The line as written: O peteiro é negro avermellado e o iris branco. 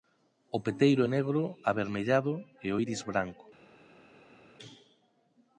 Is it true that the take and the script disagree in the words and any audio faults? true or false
false